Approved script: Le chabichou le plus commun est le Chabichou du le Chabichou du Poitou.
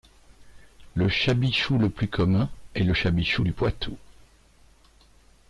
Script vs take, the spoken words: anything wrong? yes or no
yes